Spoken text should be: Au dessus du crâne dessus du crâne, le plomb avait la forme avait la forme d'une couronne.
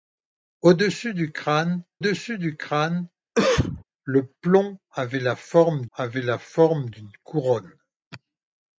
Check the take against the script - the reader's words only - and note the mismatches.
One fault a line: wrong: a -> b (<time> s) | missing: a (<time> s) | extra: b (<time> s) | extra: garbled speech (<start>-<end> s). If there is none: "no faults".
no faults